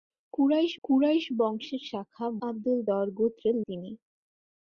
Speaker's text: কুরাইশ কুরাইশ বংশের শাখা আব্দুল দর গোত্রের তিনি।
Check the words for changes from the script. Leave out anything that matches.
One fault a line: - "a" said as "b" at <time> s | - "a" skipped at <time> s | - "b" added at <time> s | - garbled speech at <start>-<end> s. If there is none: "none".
none